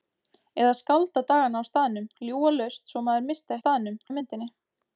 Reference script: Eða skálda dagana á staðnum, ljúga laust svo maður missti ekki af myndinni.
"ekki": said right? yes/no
no